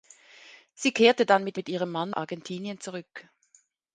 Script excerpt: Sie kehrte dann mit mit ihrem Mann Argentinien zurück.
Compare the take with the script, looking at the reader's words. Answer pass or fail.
pass